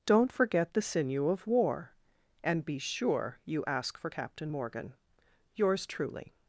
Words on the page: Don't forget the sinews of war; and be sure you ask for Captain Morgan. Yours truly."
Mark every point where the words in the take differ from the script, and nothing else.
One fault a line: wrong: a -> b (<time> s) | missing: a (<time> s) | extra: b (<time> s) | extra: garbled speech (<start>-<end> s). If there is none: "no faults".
wrong: sinews -> sinew (0.8 s)